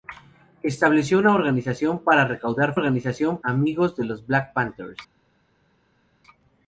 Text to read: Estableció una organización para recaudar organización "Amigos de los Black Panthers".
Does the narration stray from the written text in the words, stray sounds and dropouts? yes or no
no